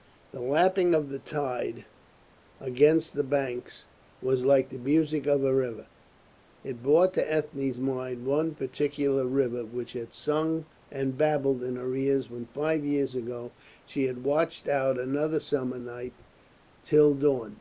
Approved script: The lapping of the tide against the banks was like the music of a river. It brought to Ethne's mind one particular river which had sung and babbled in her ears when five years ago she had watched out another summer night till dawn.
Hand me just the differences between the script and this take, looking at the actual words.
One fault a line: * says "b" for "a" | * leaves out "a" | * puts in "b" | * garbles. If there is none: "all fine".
all fine